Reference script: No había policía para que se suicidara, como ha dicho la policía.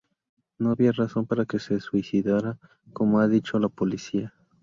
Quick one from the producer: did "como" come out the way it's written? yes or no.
yes